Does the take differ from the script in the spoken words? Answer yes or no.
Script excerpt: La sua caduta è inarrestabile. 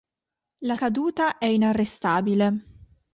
yes